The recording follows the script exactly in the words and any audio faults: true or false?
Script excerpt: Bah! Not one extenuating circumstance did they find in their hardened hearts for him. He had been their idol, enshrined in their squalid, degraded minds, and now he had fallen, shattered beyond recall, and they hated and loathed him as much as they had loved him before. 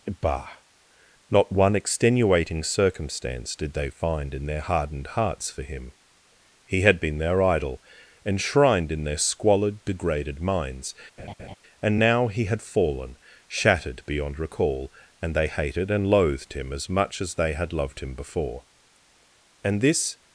false